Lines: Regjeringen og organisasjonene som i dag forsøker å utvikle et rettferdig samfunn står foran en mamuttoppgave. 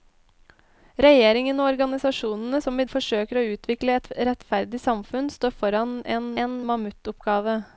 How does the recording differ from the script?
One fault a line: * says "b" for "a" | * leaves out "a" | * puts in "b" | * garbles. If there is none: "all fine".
* leaves out "dag"
* puts in "en"